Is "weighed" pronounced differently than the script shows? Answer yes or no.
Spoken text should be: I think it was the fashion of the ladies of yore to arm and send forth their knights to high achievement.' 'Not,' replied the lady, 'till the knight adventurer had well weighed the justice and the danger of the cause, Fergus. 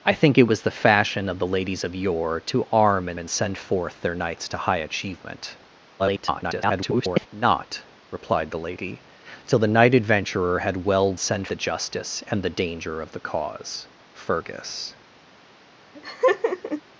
yes